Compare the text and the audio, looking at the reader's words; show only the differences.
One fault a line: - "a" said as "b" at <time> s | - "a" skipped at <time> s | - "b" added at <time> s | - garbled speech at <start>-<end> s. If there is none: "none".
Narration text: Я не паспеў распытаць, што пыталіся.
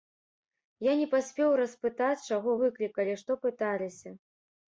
- "чаго выклікалі" added at 2.3 s